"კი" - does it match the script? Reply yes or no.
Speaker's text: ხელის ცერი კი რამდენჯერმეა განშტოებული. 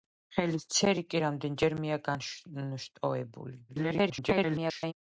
yes